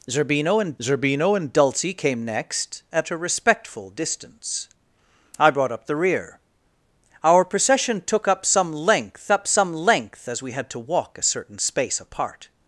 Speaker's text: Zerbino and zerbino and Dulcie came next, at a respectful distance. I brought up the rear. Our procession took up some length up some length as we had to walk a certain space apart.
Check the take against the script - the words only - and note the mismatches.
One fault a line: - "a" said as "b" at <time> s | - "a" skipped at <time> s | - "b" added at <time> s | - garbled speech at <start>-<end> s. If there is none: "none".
none